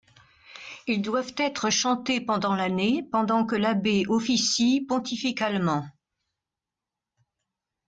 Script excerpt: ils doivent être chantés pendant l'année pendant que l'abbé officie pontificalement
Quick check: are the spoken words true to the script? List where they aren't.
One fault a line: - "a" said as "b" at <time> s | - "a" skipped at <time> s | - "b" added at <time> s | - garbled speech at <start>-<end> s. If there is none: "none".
none